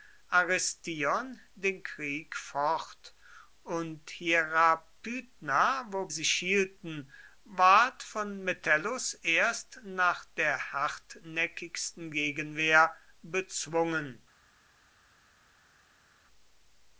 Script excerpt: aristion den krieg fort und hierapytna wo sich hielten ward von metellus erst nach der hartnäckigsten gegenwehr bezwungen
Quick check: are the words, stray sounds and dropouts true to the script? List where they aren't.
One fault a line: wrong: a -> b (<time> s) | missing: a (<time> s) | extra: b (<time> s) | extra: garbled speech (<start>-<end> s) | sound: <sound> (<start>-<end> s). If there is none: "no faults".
no faults